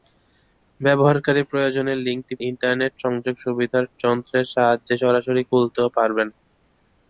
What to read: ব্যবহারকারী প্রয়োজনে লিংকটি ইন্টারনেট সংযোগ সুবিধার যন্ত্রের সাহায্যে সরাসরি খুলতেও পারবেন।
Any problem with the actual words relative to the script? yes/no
no